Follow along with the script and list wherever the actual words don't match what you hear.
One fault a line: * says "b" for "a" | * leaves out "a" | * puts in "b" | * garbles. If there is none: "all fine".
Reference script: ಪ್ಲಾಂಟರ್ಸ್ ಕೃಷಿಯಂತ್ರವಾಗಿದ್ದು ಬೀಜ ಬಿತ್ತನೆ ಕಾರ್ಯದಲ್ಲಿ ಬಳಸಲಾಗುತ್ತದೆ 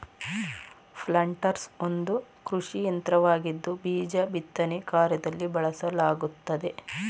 * puts in "ಒಂದು"